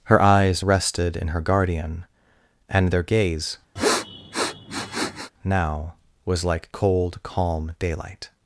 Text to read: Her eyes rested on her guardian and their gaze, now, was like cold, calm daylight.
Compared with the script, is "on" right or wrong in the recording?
wrong